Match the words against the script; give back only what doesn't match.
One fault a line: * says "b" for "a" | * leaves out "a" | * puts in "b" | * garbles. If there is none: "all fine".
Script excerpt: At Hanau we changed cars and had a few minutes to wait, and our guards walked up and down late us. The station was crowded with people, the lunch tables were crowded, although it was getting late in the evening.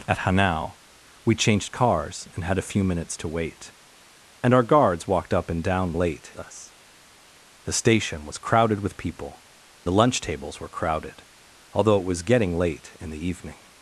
all fine